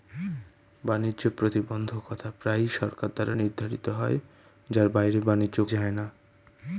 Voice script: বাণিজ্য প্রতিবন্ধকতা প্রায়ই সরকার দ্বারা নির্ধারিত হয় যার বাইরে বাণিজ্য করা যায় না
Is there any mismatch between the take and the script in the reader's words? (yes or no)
yes